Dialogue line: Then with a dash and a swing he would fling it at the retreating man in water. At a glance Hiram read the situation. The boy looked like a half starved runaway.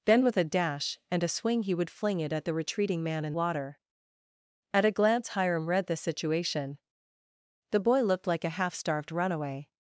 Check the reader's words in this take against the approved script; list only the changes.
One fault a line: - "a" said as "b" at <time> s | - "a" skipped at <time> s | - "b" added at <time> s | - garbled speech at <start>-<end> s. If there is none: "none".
none